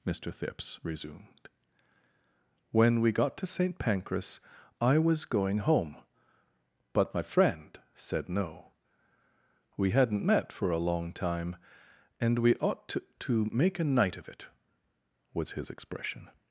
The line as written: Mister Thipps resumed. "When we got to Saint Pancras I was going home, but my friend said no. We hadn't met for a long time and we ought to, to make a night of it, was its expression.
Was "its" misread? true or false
true